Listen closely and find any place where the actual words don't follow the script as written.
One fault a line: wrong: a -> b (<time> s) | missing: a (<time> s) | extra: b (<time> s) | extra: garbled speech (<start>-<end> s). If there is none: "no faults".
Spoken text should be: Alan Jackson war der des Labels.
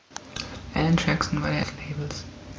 no faults